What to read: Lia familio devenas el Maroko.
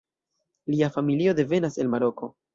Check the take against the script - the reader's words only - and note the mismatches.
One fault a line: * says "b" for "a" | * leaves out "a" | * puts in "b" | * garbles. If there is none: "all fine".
all fine